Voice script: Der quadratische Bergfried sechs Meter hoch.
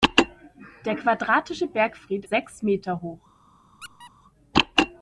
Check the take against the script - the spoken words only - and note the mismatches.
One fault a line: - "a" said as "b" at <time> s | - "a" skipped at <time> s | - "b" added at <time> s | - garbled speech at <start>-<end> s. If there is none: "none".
none